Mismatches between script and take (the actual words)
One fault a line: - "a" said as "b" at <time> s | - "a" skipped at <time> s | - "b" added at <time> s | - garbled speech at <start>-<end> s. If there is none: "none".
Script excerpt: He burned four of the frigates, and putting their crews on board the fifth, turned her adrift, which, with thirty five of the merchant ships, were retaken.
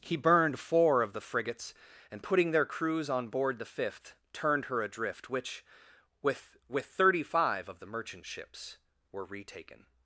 - "with" added at 6.7 s